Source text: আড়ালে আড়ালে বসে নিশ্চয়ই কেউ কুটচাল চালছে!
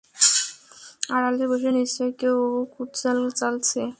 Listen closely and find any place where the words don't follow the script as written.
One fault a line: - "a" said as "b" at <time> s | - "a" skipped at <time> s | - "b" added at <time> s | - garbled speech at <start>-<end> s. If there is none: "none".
- "আড়ালে" skipped at 1.4 s